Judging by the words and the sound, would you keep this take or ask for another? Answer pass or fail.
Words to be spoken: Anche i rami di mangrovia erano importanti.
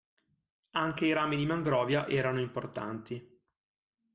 pass